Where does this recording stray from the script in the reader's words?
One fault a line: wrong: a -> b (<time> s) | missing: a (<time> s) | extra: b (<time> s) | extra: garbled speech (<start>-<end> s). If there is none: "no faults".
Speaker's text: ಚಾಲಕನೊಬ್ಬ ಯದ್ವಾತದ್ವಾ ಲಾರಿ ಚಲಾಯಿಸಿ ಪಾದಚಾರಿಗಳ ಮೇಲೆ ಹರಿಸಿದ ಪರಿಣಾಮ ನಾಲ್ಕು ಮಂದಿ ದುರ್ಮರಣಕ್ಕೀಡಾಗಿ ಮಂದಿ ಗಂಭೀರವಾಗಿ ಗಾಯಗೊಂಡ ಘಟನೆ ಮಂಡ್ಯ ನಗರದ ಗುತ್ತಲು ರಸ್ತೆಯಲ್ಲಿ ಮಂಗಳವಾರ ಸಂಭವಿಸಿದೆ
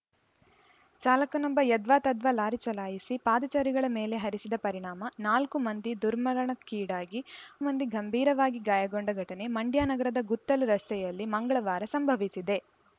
no faults